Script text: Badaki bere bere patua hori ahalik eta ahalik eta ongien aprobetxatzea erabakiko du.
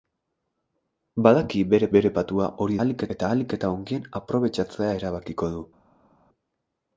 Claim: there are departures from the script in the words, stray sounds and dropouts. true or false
false